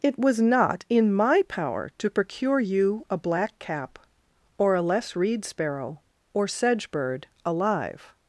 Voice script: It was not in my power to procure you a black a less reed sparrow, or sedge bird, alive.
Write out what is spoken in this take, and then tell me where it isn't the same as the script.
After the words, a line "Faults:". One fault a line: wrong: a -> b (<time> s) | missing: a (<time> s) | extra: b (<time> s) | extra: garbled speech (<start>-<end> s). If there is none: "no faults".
It was not in my power to procure you a black cap, or a less reed sparrow, or sedge bird, alive.
Faults:
extra: cap or (3.6 s)